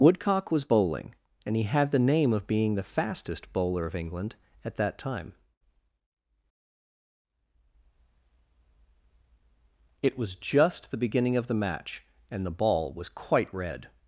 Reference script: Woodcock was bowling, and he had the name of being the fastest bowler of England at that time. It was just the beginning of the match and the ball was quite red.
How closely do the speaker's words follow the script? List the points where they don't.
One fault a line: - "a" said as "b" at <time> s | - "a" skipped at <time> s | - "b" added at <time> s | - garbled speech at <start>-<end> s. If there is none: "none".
none